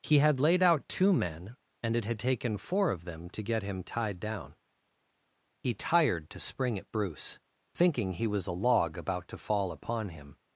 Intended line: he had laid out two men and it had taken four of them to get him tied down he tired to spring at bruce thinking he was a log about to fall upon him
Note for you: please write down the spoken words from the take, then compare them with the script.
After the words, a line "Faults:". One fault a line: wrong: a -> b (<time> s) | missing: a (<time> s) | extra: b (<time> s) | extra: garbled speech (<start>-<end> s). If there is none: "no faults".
he had laid out two men and it had taken four of them to get him tied down he tired to spring at bruce thinking he was a log about to fall upon him
Faults:
no faults